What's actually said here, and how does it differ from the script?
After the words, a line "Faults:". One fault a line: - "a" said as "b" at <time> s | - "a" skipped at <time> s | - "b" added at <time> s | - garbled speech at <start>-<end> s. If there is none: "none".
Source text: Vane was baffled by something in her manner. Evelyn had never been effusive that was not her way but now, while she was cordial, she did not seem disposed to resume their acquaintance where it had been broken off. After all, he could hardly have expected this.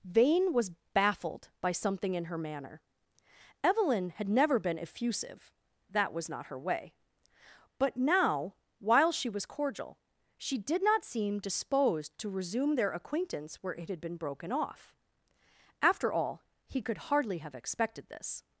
Vane was baffled by something in her manner. Evelyn had never been effusive that was not her way but now, while she was cordial, she did not seem disposed to resume their acquaintance where it had been broken off. After all, he could hardly have expected this.
Faults:
none